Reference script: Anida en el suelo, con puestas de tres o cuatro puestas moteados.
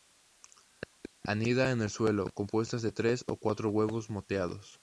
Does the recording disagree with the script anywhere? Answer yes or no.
yes